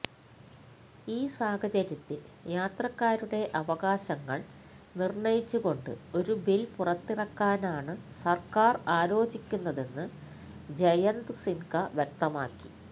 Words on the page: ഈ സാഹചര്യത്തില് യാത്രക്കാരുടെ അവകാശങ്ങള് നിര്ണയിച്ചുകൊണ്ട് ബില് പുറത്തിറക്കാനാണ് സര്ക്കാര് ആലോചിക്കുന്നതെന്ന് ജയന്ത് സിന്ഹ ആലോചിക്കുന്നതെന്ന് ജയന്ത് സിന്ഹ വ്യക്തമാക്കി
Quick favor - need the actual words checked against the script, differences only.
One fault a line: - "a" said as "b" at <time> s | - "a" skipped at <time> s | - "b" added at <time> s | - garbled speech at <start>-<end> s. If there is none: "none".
- "ഒരു" added at 6.2 s
- "ആലോചിക്കുന്നതെന്ന് ജയന്ത് സിന്ഹ" skipped at 11.7 s